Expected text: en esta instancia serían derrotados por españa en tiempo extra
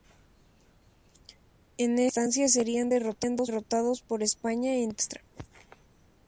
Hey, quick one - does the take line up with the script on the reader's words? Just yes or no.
yes